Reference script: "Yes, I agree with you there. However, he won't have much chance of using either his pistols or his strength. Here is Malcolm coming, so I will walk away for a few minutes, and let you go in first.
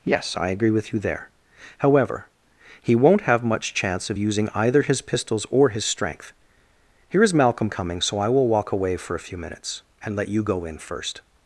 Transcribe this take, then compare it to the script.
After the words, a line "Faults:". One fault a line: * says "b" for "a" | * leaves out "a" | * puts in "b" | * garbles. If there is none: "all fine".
"Yes, I agree with you there. However, he won't have much chance of using either his pistols or his strength. Here is Malcolm coming, so I will walk away for a few minutes, and let you go in first.
Faults:
all fine